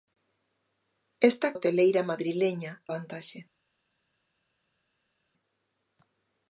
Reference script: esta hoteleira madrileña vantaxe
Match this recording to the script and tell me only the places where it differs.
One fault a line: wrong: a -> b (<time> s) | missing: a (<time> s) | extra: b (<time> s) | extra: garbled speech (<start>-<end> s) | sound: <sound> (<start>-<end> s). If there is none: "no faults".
no faults